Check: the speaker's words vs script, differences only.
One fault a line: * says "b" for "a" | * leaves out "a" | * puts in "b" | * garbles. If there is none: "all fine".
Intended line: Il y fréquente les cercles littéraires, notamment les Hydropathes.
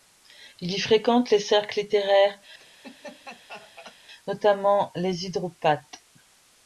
all fine